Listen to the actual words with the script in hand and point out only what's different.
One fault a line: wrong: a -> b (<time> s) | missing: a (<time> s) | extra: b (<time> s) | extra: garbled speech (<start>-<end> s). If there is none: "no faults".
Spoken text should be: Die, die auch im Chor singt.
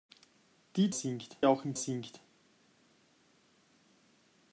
wrong: die -> singt (0.9 s)
missing: Chor (1.7 s)